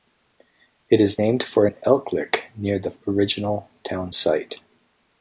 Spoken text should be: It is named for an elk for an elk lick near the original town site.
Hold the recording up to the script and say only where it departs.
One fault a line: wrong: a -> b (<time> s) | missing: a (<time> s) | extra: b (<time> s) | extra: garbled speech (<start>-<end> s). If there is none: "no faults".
missing: for an elk (2.1 s)